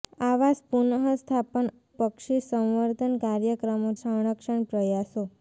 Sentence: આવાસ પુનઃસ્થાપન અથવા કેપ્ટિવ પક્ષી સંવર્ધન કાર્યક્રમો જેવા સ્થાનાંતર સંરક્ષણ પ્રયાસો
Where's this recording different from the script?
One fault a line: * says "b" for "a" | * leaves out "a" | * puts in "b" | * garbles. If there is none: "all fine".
* leaves out "અથવા કેપ્ટિવ"
* leaves out "જેવા સ્થાનાંતર"